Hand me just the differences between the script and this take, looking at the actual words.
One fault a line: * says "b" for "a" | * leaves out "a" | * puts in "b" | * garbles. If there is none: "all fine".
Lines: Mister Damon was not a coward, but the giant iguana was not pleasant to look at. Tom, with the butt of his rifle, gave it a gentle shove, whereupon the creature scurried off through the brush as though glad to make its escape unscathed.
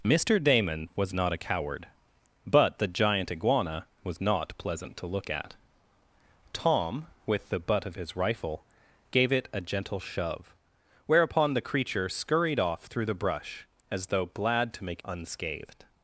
* leaves out "its escape"